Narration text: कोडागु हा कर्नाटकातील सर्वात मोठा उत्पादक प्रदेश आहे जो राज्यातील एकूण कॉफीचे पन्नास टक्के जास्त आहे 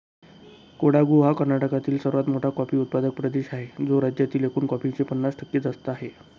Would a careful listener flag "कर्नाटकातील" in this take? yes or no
no